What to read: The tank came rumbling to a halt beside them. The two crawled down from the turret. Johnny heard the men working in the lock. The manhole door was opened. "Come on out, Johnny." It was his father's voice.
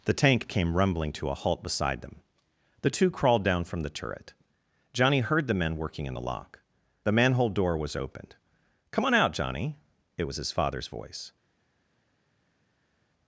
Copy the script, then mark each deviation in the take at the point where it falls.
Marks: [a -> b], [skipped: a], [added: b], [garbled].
The tank came rumbling to a halt beside them. The two crawled down from the turret. Johnny heard the men working in the lock. The manhole door was opened. "Come on out, Johnny." It was his father's voice.